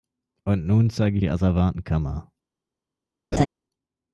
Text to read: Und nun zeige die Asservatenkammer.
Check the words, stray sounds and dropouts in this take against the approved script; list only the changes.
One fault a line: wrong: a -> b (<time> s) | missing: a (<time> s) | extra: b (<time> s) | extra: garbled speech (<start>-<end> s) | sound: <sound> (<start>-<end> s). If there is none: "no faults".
sound: laugh (3.3-3.5 s)